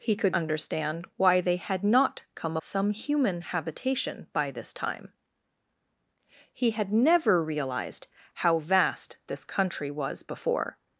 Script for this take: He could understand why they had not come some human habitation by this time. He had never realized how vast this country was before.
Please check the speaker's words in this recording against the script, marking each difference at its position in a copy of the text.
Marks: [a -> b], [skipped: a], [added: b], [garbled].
He could understand why they had not come some human habitation by this time. He had never realized how vast this country was before.